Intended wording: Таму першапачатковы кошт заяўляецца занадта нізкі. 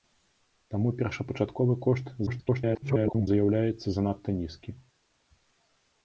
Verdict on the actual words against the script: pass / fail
fail